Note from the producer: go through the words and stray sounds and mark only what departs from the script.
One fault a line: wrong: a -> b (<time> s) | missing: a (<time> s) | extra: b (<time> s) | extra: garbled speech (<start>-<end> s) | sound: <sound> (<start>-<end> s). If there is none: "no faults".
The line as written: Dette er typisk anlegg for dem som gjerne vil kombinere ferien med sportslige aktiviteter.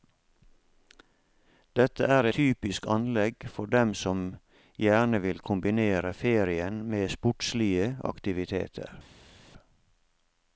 no faults